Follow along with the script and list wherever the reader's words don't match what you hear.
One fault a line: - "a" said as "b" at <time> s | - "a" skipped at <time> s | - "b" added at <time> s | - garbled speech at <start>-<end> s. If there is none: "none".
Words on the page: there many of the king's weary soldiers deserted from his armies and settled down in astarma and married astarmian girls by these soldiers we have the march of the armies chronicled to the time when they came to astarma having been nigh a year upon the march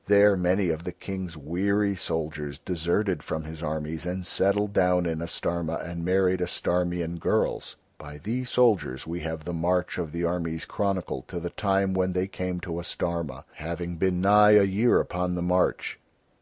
none